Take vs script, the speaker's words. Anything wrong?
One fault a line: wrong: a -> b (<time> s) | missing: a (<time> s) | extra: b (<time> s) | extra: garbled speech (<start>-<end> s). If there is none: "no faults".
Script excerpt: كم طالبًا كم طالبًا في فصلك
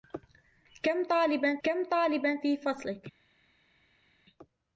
no faults